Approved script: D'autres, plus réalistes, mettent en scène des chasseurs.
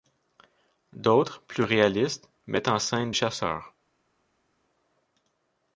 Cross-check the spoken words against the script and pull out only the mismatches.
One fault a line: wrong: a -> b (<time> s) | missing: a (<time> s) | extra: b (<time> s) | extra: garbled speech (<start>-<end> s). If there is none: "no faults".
missing: des (3.1 s)